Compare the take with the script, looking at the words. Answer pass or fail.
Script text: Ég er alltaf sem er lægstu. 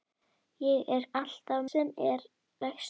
pass